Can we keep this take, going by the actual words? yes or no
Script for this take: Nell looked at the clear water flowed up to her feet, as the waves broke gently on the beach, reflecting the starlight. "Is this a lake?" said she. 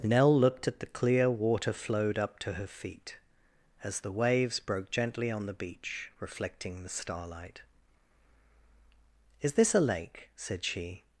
yes